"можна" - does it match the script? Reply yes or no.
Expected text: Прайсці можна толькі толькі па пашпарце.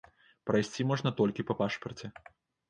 yes